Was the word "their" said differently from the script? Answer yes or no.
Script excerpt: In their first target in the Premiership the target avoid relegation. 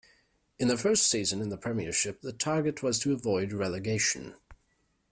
no